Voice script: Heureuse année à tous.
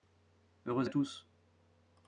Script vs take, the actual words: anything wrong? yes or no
yes